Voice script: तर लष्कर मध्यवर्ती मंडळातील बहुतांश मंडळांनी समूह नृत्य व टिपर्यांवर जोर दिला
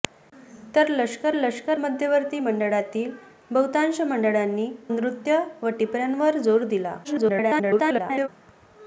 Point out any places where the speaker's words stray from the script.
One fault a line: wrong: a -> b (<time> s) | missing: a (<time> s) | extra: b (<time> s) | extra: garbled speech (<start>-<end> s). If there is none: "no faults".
extra: लष्कर (1.3 s)
missing: समूह (4.7 s)
extra: garbled speech (7.0-8.3 s)